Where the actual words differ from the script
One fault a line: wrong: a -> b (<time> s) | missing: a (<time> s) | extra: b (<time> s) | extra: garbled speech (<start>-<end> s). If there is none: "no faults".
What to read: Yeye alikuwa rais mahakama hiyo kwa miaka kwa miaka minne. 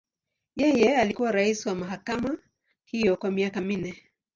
extra: wa (1.6 s)
missing: kwa miaka (3.6 s)